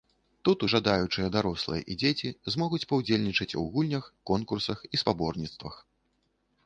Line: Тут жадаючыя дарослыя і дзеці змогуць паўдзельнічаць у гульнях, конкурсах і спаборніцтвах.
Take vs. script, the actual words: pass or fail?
pass